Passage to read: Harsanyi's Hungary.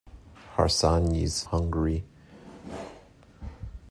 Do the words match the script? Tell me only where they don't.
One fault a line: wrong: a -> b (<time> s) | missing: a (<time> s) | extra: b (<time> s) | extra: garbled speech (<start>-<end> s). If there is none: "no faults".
no faults